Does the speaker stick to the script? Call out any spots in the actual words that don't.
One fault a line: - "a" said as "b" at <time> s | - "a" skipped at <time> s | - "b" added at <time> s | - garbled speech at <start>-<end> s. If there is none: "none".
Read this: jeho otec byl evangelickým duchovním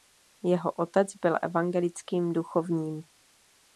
none